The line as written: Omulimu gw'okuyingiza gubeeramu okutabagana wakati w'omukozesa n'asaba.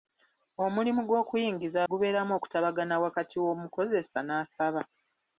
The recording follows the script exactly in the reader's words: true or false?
true